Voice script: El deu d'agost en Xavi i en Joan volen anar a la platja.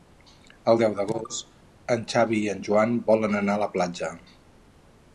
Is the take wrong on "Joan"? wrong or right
right